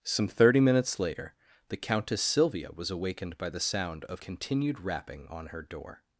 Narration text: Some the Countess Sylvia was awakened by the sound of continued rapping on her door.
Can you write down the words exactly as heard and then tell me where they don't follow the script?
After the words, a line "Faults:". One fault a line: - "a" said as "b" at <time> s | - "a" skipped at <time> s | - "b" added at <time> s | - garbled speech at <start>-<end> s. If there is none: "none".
Some thirty minutes later the Countess Sylvia was awakened by the sound of continued rapping on her door.
Faults:
- "thirty minutes later" added at 0.3 s